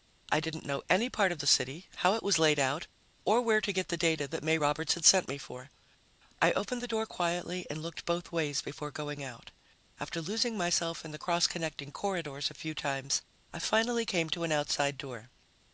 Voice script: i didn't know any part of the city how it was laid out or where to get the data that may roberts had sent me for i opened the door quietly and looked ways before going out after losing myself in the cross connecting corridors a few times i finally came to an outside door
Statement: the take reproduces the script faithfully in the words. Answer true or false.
false